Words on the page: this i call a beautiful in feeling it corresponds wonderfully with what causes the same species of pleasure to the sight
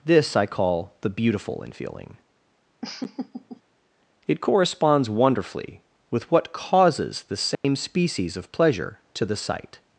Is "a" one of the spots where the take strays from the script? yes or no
yes